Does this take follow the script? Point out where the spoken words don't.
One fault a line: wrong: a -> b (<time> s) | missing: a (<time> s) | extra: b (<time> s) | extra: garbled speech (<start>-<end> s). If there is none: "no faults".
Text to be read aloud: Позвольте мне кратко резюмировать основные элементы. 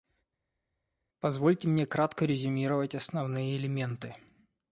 no faults